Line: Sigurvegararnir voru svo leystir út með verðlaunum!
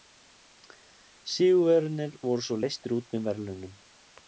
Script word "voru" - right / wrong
right